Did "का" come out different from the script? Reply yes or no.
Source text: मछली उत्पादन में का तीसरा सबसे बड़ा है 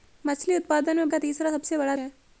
no